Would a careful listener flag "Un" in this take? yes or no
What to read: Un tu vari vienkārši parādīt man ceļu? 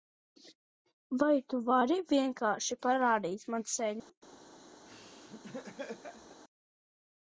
yes